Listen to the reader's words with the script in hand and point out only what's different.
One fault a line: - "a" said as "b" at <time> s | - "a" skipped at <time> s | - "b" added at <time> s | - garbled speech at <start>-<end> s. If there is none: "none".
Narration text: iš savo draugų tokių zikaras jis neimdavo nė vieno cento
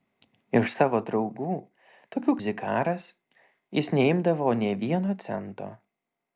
none